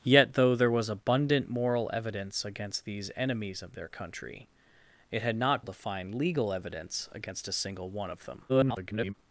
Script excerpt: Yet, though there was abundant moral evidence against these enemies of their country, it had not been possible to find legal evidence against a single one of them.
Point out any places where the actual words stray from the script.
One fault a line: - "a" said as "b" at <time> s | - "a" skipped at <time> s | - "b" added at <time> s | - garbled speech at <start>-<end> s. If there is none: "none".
- "been possible" skipped at 5.6 s
- garbled speech at 8.5-9.1 s